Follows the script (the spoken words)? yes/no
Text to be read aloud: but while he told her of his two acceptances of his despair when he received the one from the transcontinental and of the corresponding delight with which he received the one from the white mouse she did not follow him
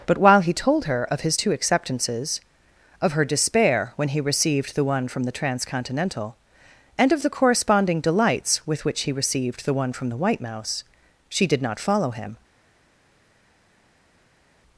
no